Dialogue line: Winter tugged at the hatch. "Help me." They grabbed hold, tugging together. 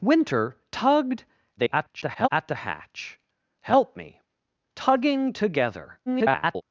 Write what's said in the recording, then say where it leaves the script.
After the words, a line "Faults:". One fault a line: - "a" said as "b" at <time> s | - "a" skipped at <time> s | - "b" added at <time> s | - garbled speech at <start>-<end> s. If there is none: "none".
Winter tugged [garbled] at the hatch. "Help me." Tugging together. [garbled]
Faults:
- garbled speech at 1.6-2.3 s
- "They grabbed hold" skipped at 4.2 s
- garbled speech at 6.1-6.6 s